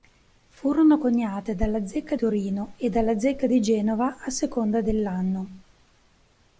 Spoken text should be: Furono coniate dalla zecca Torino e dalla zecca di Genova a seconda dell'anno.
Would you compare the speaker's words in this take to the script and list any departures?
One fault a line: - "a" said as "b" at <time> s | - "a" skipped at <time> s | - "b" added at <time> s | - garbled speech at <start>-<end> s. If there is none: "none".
none